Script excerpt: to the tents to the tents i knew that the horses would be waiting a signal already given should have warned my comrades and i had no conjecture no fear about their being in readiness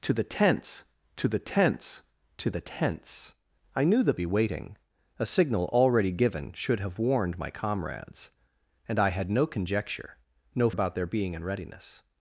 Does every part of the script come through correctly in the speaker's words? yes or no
no